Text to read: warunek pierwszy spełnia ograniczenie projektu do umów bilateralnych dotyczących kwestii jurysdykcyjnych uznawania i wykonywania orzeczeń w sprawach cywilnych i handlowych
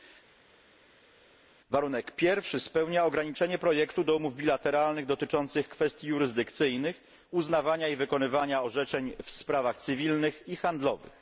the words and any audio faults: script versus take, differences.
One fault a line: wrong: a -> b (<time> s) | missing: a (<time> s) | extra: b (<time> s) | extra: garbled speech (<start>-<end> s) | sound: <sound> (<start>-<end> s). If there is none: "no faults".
no faults